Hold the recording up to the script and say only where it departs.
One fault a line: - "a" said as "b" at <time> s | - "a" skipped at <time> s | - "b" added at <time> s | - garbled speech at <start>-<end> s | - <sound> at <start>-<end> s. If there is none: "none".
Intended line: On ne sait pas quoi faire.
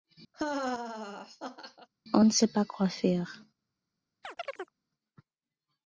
- laugh at 0.3-1.9 s
- chirp at 4.2-4.7 s